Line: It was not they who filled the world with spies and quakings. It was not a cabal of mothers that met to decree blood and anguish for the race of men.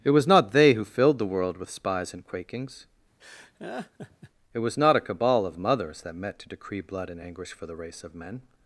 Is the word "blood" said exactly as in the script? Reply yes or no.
yes